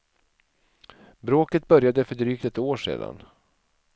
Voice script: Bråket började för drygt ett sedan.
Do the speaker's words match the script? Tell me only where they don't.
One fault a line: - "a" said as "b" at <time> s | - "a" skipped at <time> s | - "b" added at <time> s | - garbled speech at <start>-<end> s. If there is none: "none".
- "år" added at 2.6 s